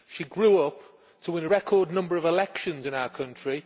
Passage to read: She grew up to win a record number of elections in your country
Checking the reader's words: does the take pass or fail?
fail